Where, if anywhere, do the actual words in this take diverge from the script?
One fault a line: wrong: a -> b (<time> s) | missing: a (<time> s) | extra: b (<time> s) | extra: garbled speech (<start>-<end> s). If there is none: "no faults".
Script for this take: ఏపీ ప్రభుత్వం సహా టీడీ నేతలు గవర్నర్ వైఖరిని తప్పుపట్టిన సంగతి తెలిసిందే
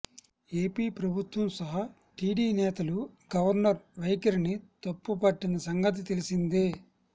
no faults